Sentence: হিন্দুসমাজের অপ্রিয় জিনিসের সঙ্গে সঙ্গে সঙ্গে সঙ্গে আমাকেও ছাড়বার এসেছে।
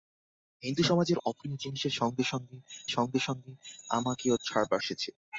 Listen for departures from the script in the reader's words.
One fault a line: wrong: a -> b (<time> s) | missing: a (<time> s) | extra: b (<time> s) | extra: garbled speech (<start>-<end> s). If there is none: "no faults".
no faults